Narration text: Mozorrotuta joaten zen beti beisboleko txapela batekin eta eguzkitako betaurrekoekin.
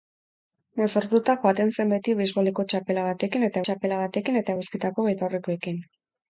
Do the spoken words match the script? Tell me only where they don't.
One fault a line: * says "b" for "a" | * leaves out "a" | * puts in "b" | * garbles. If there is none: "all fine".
* puts in "txapela batekin eta"